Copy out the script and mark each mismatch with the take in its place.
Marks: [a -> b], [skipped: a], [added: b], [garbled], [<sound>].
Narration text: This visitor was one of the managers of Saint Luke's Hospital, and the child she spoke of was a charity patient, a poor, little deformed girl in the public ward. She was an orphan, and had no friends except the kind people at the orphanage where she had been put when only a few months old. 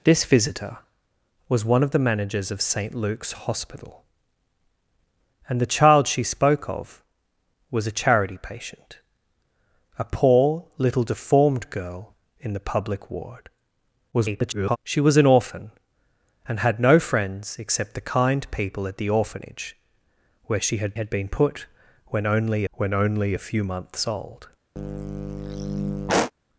This visitor was one of the managers of Saint Luke's Hospital, and the child she spoke of was a charity patient, a poor, little deformed girl in the public ward. [garbled] She was an orphan, and had no friends except the kind people at the orphanage where she had [added: had] been put when only [added: when only] a few months old. [sigh]